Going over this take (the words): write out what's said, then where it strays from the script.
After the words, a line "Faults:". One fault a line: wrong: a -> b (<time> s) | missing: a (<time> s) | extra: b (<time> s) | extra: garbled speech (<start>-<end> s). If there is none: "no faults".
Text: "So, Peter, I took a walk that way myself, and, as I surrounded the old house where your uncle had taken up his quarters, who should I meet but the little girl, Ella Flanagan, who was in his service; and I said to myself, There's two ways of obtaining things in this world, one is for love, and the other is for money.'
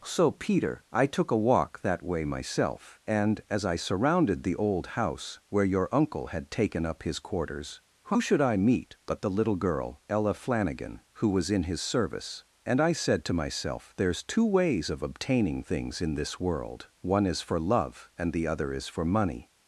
"So, Peter, I took a walk that way myself, and, as I surrounded the old house where your uncle had taken up his quarters, who should I meet but the little girl, Ella Flanagan, who was in his service; and I said to myself, There's two ways of obtaining things in this world, one is for love, and the other is for money.'
Faults:
no faults